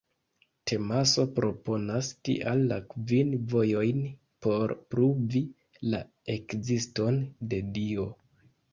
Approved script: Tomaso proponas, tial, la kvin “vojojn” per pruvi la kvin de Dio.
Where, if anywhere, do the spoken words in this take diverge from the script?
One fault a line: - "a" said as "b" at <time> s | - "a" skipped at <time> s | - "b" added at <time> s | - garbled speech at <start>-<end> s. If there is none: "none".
- "per" said as "por" at 4.5 s
- "kvin" said as "ekziston" at 6.4 s